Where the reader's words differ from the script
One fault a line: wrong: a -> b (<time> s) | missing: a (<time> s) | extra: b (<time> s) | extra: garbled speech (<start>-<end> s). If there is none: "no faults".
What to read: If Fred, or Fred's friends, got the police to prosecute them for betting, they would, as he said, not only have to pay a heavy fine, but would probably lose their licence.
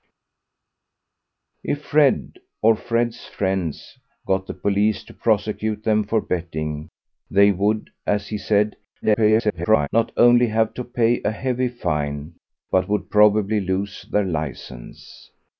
extra: garbled speech (9.0-9.9 s)